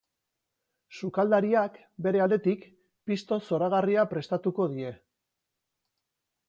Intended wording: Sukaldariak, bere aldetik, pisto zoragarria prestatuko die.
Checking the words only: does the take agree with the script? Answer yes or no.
yes